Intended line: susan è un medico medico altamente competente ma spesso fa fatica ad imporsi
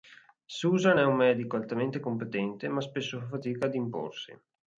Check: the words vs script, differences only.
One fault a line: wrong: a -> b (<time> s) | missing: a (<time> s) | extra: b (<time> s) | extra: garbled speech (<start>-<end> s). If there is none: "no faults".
missing: medico (1.6 s)